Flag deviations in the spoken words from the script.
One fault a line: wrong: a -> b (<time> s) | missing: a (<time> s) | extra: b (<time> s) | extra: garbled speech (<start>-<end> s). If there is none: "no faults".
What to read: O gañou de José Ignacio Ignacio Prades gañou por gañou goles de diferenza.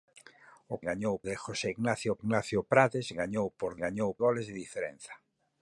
no faults